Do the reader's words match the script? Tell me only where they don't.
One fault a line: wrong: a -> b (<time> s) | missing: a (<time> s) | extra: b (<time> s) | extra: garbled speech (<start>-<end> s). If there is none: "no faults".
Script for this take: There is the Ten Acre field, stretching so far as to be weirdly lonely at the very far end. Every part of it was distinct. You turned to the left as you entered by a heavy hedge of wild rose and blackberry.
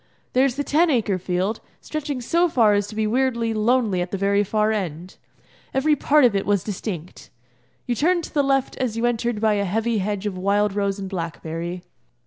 no faults